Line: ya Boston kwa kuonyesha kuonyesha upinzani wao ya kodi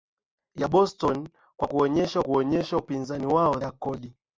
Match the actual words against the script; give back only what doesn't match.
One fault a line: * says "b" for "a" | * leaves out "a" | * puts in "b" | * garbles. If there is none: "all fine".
all fine